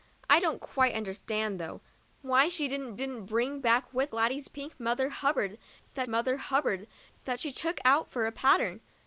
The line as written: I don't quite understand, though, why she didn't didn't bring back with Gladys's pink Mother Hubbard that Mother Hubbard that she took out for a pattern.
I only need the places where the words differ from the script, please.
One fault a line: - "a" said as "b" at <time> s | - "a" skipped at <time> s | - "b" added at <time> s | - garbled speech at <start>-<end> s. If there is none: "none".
none